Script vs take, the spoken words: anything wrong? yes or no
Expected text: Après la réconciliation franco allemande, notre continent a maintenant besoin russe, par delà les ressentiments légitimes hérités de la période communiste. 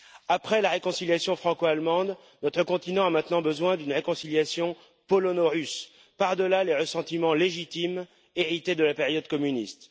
yes